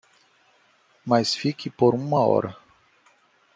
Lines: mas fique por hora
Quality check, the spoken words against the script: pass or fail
fail